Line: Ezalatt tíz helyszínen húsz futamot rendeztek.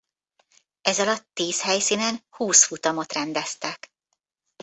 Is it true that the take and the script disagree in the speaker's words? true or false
false